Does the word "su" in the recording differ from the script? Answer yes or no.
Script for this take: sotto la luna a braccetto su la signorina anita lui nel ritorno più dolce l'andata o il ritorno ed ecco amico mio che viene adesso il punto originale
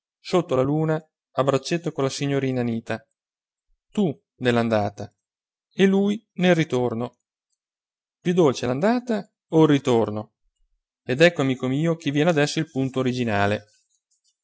yes